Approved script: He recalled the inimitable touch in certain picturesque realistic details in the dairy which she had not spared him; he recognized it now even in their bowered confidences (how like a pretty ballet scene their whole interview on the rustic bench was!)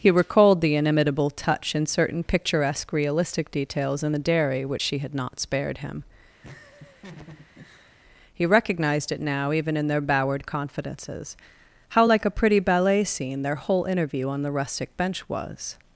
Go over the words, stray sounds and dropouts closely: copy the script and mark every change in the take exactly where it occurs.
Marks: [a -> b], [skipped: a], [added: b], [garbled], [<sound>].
He recalled the inimitable touch in certain picturesque realistic details in the dairy which she had not spared him; [laugh] he recognized it now even in their bowered confidences (how like a pretty ballet scene their whole interview on the rustic bench was!)